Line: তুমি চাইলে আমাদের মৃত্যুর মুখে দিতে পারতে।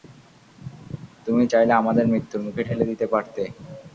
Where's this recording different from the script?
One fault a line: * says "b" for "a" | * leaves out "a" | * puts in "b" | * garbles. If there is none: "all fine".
* puts in "ঠেলে"